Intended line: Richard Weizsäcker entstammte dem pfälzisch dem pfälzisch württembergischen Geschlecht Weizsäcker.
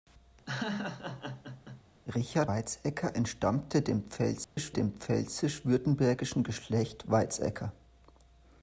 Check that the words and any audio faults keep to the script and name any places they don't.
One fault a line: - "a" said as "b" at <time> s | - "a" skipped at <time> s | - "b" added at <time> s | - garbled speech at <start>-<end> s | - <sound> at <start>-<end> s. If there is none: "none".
- laugh at 0.5-1.8 s
- dropout at 4.4-4.6 s